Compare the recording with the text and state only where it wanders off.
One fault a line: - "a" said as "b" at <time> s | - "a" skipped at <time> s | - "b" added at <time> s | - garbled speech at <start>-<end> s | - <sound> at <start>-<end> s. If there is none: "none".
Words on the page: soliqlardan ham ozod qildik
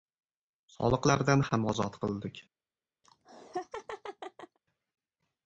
- laugh at 3.0-4.6 s